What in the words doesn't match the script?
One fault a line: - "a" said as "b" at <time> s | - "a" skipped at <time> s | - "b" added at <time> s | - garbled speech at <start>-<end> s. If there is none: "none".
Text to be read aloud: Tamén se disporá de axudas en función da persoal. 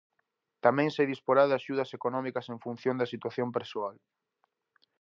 - "económicas" added at 2.0 s
- "situación" added at 3.1 s